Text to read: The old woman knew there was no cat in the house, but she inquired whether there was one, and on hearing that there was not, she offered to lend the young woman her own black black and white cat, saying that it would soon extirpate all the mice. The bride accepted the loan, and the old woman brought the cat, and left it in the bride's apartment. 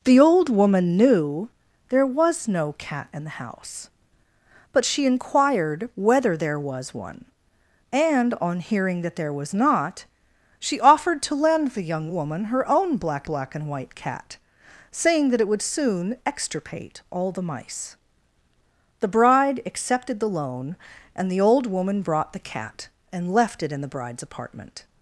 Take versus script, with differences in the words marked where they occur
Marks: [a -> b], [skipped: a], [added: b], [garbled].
The old woman knew there was no cat in the house, but she inquired whether there was one, and on hearing that there was not, she offered to lend the young woman her own black black and white cat, saying that it would soon extirpate all the mice. The bride accepted the loan, and the old woman brought the cat, and left it in the bride's apartment.